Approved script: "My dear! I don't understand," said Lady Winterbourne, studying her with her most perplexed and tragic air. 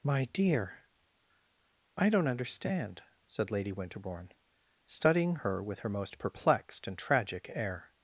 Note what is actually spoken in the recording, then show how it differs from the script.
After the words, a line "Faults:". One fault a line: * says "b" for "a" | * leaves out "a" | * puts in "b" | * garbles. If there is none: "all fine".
"My dear! I don't understand," said Lady Winterbourne, studying her with her most perplexed and tragic air.
Faults:
all fine